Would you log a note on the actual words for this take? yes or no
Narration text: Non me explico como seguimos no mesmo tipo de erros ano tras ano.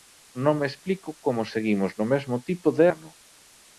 yes